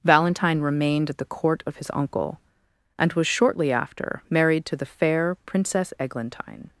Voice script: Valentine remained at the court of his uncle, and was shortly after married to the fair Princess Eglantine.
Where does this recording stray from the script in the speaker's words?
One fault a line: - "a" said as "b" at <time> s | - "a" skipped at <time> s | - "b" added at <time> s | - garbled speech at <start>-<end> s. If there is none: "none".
none